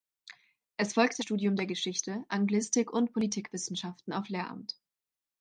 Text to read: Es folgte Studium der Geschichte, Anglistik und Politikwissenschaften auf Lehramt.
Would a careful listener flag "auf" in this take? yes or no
no